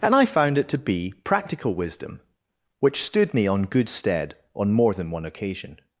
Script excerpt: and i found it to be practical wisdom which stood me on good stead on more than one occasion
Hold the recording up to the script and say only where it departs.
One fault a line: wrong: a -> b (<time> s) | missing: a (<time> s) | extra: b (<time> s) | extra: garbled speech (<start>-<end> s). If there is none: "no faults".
no faults